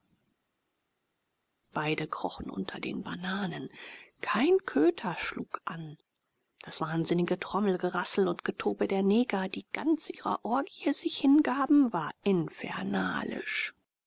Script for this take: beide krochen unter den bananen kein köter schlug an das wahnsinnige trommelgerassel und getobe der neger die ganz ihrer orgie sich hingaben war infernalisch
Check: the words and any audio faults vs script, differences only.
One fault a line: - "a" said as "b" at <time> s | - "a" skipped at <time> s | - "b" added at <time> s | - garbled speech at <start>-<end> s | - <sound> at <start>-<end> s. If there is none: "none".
none